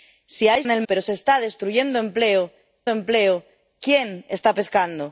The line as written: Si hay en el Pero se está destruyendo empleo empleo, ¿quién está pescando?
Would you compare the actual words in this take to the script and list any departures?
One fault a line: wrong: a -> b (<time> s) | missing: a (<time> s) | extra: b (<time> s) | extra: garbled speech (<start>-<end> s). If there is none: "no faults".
no faults